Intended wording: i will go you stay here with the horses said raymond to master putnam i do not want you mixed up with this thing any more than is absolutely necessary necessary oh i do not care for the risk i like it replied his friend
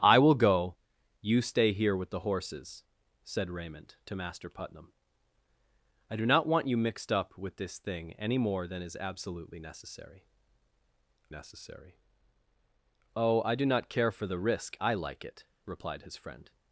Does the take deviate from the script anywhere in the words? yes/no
no